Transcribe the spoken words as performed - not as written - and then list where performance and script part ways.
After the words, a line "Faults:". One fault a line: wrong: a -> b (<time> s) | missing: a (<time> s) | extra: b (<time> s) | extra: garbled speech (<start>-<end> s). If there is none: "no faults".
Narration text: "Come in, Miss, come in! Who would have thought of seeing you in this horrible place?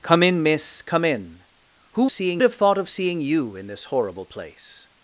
"Come in, Miss, come in! Who seeing have thought of seeing you in this horrible place?
Faults:
wrong: would -> seeing (2.1 s)